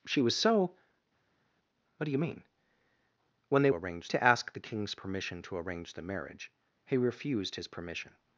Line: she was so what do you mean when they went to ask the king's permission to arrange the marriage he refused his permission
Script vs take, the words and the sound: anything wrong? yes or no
yes